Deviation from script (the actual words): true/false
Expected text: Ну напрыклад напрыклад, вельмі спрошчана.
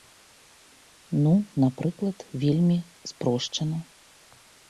true